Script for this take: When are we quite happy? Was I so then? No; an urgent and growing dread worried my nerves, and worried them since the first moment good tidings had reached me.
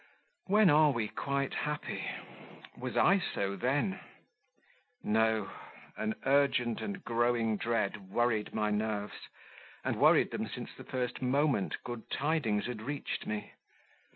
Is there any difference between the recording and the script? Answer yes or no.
no